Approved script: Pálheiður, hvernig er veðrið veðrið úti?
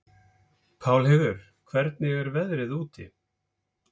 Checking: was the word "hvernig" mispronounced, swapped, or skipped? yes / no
no